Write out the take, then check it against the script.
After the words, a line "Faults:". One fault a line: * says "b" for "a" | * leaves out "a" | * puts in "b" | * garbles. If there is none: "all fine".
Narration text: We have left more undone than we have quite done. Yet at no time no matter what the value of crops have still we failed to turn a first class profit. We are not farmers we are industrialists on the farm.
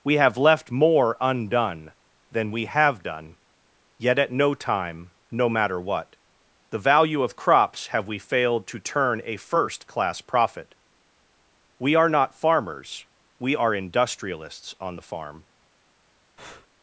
We have left more undone than we have done. Yet at no time no matter what the value of crops have we failed to turn a first class profit. We are not farmers we are industrialists on the farm.
Faults:
* leaves out "quite"
* leaves out "still"